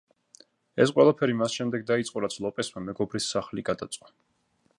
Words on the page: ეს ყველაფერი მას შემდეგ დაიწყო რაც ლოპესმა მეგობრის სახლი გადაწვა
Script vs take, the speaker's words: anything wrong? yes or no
no